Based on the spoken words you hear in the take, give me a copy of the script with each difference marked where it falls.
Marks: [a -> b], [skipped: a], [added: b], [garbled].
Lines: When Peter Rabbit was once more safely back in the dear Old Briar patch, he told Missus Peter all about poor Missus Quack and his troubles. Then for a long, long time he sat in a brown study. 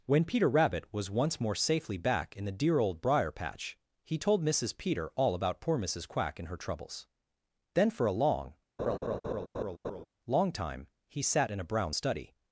When Peter Rabbit was once more safely back in the dear Old Briar patch, he told Missus Peter all about poor Missus Quack and [his -> her] troubles. Then for a long, long time he sat in a brown study.